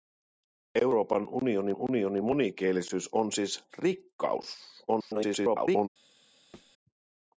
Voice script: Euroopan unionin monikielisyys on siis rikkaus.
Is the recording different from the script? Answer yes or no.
yes